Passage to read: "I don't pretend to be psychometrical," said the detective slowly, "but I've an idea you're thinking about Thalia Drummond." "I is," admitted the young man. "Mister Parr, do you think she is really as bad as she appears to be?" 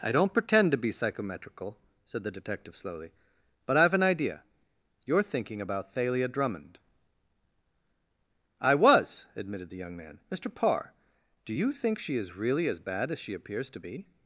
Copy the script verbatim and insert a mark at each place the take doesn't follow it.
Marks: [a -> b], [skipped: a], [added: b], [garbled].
"I don't pretend to be psychometrical," said the detective slowly, "but I've an idea you're thinking about Thalia Drummond." "I [is," -> was] admitted the young man. "Mister Parr, do you think she is really as bad as she appears to be?"